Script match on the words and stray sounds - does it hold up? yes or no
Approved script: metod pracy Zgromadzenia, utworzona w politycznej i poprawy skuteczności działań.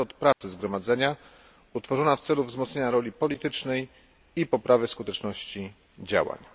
no